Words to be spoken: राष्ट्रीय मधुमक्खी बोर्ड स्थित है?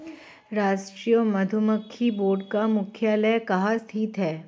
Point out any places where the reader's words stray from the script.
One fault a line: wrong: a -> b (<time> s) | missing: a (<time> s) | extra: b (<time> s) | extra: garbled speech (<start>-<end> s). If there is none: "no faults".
extra: का मुख्यालय कहाँ (2.5 s)